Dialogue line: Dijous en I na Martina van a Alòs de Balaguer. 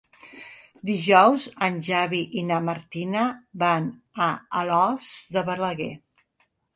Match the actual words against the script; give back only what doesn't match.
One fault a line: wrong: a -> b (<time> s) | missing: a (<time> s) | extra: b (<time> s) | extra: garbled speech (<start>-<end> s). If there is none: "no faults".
extra: Xavi (1.9 s)